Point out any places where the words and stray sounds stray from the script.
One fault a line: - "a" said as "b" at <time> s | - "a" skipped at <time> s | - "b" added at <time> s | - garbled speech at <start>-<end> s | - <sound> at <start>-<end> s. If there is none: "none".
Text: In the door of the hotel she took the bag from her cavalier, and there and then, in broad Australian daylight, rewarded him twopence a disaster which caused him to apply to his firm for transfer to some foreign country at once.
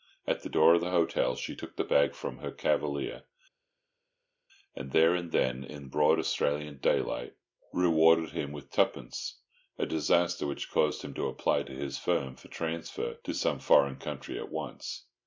- "In" said as "At" at 0.2 s
- "with" added at 8.5 s